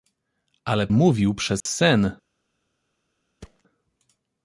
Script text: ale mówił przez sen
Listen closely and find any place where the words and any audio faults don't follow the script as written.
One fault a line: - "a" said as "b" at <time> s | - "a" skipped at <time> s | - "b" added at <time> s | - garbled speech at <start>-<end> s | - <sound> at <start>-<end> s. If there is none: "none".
- dropout at 1.6-1.7 s
- thud at 3.4-3.6 s